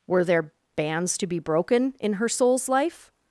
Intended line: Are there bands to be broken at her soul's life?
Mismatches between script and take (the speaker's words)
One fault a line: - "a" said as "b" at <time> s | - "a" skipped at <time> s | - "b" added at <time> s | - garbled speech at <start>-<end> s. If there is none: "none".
- "Are" said as "Were" at 0.1 s
- "at" said as "in" at 2.0 s